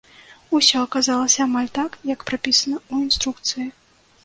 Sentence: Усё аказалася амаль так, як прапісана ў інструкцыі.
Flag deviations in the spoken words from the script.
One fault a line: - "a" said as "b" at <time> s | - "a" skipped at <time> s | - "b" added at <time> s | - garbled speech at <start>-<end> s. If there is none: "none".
none